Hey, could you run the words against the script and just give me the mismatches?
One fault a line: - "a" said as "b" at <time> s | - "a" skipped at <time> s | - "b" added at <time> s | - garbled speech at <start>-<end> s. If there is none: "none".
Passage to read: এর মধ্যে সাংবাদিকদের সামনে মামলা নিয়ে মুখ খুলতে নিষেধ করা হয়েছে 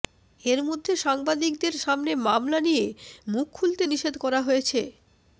none